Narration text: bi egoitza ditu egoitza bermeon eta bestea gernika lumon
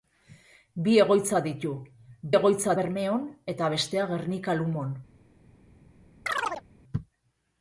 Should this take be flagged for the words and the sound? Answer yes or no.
yes